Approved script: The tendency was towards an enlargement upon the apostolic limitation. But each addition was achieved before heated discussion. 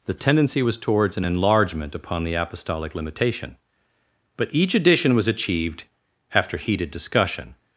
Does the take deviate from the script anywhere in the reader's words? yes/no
yes